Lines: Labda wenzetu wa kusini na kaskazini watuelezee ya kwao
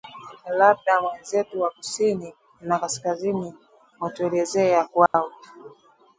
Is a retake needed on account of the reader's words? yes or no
no